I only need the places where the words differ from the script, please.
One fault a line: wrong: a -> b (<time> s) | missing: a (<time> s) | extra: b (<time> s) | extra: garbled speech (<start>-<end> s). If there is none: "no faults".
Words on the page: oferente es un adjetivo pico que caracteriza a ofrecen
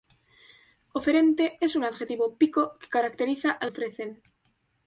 no faults